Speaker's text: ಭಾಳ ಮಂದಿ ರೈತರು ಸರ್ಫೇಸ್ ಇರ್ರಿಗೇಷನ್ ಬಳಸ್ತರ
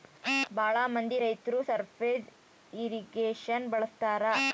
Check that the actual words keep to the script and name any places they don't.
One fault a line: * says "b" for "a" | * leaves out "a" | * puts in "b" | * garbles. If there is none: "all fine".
all fine